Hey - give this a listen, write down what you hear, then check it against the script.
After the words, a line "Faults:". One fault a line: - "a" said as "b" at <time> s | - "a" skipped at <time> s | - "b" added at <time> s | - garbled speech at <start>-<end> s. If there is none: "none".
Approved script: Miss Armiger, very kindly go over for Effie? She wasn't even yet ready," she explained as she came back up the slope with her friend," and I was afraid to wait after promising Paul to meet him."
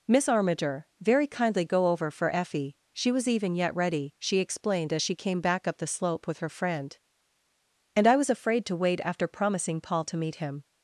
Miss Armiger, very kindly go over for Effie? She was even yet ready," she explained as she came back up the slope with her friend," and I was afraid to wait after promising Paul to meet him."
Faults:
- "wasn't" said as "was" at 3.1 s